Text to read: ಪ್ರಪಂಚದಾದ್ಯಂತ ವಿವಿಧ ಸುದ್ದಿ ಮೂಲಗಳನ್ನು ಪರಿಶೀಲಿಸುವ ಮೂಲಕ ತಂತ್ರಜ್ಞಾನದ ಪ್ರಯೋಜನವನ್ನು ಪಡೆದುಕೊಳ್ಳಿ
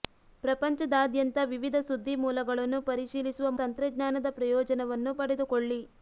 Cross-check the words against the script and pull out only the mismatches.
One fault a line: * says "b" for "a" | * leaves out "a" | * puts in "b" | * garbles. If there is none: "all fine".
* leaves out "ಮೂಲಕ"